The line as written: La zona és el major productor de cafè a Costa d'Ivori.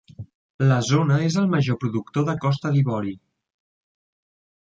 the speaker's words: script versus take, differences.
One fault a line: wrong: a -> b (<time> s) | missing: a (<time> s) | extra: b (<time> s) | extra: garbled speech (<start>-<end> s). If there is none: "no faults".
missing: cafè (2.4 s)